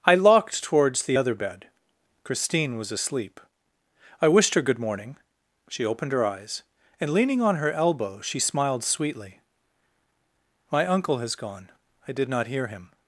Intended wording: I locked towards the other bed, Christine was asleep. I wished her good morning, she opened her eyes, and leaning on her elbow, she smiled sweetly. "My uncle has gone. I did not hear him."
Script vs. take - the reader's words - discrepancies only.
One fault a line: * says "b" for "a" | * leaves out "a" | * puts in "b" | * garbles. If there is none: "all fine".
all fine